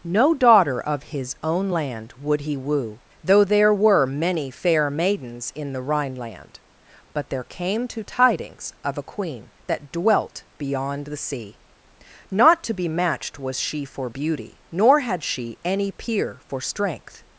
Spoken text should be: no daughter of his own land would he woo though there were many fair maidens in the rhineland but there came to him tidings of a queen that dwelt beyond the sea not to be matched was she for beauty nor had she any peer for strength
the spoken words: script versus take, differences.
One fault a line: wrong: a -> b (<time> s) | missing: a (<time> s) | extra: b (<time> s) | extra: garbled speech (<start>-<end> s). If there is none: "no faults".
missing: him (8.1 s)